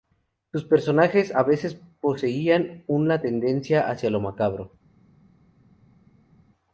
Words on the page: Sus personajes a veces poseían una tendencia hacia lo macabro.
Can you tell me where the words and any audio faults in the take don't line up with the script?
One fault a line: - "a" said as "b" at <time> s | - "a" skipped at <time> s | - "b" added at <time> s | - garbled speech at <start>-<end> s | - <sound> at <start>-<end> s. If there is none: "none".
none